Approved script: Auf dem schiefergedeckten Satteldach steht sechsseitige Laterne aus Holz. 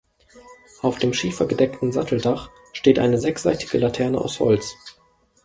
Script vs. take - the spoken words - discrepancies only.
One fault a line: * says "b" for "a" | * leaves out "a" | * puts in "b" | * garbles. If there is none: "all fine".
* puts in "eine"